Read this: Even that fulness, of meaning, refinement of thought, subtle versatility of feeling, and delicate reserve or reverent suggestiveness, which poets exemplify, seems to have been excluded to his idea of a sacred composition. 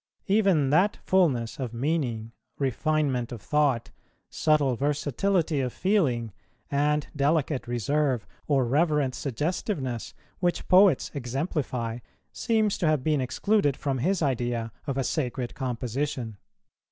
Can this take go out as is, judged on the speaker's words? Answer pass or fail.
fail